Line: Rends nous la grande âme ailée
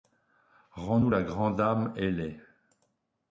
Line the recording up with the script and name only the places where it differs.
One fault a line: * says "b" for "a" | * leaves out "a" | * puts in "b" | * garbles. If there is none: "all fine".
all fine